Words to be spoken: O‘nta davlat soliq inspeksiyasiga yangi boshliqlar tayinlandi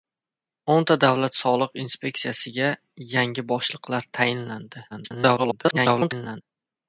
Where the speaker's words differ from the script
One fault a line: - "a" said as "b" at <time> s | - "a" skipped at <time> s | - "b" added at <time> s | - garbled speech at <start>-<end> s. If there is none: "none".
- garbled speech at 4.9-6.4 s